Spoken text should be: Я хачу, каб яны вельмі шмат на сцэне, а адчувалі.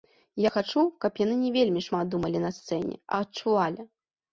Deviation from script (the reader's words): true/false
true